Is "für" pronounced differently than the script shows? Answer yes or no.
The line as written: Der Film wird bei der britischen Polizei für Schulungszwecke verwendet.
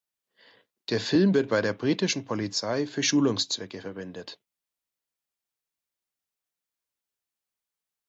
no